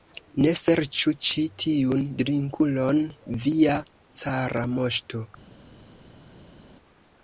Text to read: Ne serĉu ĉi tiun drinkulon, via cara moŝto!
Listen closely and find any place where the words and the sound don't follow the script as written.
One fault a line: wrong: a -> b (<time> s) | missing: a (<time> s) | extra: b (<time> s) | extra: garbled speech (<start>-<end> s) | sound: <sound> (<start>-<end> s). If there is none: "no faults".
no faults